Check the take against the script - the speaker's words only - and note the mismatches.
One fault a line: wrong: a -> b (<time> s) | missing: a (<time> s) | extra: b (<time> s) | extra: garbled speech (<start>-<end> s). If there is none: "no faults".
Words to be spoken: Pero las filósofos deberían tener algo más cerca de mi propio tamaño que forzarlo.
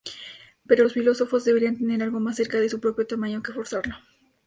wrong: las -> los (0.8 s)
wrong: mi -> su (2.7 s)